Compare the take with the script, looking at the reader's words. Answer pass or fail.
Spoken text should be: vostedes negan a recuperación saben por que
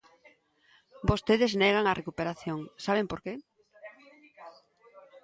pass